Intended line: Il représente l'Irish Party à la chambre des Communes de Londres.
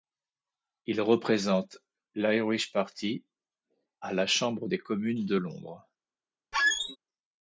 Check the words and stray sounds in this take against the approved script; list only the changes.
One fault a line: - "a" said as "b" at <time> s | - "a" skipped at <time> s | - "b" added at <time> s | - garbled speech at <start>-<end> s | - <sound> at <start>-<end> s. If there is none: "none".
- squeak at 6.5-7.0 s